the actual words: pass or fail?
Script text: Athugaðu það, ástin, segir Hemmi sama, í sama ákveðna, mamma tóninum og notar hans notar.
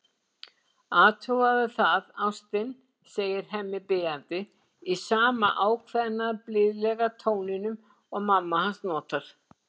fail